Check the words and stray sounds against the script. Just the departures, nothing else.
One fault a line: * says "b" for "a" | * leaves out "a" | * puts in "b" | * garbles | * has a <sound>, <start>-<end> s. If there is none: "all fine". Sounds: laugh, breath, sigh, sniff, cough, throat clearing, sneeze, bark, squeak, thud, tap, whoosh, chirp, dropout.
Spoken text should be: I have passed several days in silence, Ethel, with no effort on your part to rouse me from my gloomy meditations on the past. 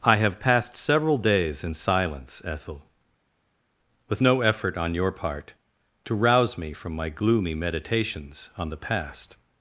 all fine